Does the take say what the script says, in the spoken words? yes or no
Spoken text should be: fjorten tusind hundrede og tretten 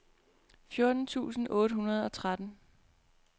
no